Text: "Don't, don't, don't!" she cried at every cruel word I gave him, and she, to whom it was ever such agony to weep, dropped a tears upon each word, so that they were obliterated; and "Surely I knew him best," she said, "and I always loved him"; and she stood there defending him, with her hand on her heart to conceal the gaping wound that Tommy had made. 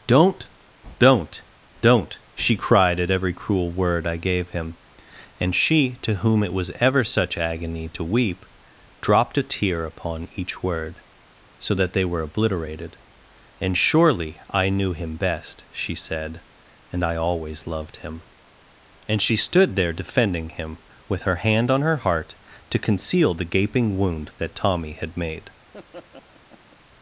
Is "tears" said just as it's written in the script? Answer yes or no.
no